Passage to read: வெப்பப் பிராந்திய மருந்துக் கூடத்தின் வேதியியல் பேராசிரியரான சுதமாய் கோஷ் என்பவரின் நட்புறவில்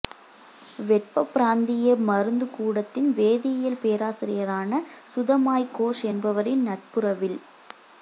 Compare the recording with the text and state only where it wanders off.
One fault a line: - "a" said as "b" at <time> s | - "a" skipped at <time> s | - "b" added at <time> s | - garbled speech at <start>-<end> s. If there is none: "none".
none